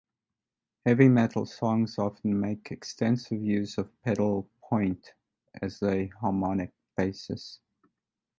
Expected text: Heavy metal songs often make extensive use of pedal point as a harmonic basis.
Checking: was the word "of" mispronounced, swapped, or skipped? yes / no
no